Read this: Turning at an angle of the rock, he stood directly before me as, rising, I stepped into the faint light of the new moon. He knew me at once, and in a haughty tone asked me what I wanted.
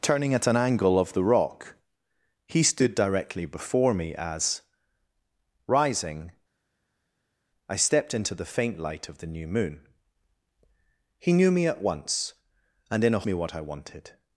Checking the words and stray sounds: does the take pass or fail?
fail